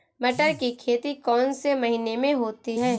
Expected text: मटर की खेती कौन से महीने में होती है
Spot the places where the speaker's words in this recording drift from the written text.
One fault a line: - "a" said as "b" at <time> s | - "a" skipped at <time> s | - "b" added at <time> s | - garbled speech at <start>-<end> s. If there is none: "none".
none